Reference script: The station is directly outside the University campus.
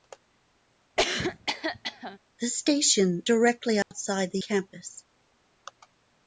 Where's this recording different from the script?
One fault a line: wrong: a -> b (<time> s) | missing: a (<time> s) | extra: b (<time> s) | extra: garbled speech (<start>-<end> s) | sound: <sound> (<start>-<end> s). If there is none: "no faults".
sound: cough (1.0-2.2 s)
missing: is (3.3 s)
sound: dropout (3.8-3.9 s)
missing: University (4.4 s)